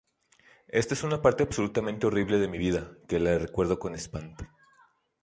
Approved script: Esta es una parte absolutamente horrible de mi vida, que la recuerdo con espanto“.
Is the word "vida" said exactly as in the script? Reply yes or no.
yes